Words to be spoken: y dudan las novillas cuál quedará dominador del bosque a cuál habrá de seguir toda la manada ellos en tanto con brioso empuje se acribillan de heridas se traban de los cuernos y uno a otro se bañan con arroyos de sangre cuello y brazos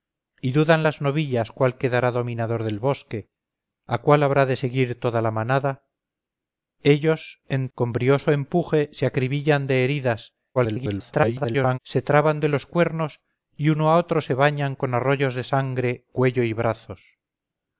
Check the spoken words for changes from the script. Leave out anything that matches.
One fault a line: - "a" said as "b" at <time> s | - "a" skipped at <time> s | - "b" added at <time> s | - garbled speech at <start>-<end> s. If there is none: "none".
- "tanto" skipped at 7.7 s
- garbled speech at 10.5-11.8 s